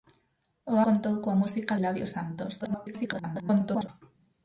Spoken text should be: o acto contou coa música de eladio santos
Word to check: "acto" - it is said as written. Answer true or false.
false